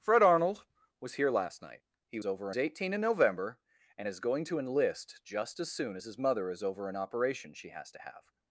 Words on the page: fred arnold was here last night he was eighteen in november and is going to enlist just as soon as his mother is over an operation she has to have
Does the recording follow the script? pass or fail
fail